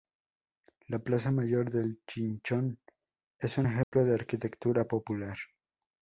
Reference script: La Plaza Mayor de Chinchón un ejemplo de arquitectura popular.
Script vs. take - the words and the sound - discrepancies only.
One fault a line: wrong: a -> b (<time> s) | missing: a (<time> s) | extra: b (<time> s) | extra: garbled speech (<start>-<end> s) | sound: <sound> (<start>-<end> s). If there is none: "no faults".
extra: es (3.4 s)
sound: dropout (3.8-3.9 s)